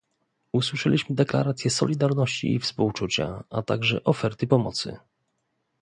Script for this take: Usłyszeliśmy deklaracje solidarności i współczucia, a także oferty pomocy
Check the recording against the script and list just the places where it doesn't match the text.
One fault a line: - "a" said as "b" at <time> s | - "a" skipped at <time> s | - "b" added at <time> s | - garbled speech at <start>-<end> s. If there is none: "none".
none